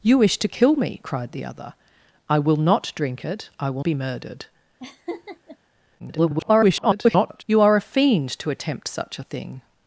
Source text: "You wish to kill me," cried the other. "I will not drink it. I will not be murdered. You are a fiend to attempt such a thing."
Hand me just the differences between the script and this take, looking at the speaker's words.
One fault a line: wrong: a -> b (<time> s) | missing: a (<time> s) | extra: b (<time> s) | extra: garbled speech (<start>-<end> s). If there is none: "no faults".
missing: not (3.8 s)
extra: garbled speech (6.0-7.4 s)